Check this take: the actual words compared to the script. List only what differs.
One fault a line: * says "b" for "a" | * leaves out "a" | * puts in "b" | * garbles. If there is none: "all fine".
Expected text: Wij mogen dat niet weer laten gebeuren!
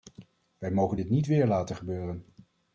* says "dit" for "dat"